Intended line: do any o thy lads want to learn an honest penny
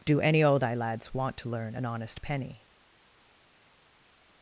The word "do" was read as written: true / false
true